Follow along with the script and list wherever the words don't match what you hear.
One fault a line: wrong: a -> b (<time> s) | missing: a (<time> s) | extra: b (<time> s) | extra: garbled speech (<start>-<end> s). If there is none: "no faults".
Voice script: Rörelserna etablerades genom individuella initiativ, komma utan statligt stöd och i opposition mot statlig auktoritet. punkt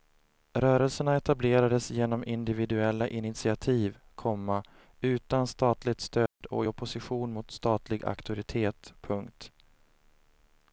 no faults